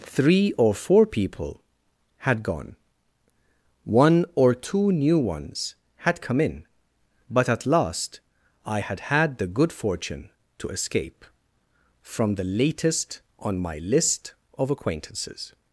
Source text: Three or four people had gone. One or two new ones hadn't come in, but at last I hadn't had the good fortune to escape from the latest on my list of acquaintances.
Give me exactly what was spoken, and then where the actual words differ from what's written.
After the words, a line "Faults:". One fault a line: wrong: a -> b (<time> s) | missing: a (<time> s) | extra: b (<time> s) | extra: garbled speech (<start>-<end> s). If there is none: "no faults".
Three or four people had gone. One or two new ones had come in, but at last I had had the good fortune to escape from the latest on my list of acquaintances.
Faults:
wrong: hadn't -> had (6.0 s)
wrong: hadn't -> had (8.8 s)